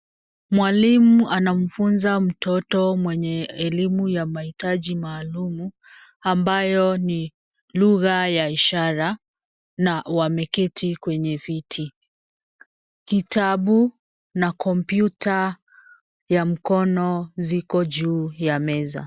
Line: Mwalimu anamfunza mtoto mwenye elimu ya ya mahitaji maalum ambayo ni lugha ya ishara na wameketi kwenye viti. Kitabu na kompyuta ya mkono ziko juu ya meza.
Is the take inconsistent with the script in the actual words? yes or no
yes